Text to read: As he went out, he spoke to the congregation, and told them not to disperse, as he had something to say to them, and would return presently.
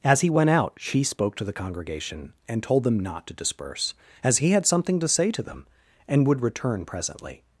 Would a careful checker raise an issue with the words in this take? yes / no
yes